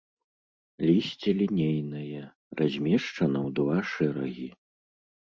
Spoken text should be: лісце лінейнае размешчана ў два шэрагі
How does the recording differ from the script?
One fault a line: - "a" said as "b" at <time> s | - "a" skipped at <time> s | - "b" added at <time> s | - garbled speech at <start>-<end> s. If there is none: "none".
none